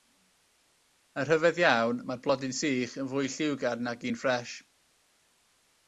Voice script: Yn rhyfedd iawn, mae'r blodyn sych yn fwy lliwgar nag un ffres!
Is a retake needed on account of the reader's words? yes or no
no